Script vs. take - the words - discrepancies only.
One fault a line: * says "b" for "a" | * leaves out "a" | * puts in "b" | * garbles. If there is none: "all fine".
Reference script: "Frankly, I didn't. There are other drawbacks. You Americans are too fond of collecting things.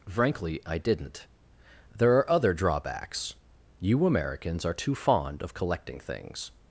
all fine